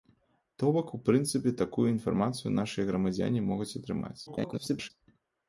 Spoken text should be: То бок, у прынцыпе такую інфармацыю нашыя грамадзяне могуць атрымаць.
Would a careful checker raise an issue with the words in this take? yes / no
yes